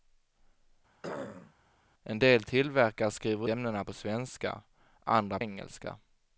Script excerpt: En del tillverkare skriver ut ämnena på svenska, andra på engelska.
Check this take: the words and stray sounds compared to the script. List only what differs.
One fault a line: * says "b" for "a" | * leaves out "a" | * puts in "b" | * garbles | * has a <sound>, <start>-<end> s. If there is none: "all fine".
* has a throat clearing, 1.0-1.5 s
* leaves out "ut"
* leaves out "på"